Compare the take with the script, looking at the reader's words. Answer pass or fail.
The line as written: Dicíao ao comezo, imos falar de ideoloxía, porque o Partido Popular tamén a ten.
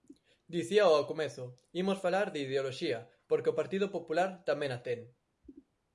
pass